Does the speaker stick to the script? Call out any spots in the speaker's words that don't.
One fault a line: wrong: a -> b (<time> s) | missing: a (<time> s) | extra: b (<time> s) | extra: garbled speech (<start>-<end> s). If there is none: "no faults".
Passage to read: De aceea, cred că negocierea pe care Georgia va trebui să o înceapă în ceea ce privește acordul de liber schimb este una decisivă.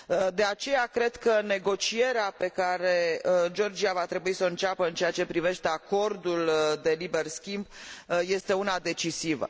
no faults